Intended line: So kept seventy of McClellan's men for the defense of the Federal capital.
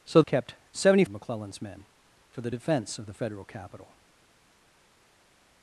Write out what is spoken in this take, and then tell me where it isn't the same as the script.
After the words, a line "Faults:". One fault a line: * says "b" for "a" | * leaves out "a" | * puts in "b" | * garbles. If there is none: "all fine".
So kept seventy of McClellan's men for the defense of the Federal capital.
Faults:
all fine